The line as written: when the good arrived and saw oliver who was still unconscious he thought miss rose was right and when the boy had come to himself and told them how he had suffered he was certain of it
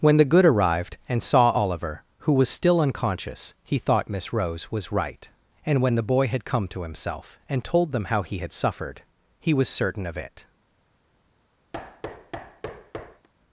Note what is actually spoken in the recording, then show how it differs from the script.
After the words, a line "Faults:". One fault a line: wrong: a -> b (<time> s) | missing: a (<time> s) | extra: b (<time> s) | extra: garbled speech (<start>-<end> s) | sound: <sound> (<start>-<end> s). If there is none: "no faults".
when the good arrived and saw oliver who was still unconscious he thought miss rose was right and when the boy had come to himself and told them how he had suffered he was certain of it
Faults:
sound: thud (11.7-13.3 s)